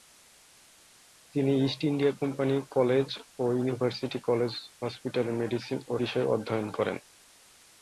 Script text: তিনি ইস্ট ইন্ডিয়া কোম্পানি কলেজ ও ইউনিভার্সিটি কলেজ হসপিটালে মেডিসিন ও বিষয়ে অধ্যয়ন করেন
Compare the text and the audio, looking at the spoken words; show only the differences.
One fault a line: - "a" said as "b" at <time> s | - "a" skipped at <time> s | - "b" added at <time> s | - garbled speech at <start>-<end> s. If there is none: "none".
none